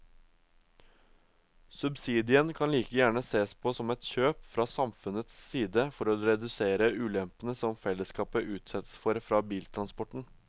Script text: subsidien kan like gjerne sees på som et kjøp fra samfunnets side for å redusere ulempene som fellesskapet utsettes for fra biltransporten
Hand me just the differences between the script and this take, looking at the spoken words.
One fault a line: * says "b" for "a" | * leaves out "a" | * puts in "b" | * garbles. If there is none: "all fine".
all fine